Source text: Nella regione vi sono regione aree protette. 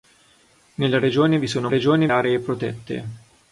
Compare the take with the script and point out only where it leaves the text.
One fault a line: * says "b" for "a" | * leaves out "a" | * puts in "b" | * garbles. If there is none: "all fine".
all fine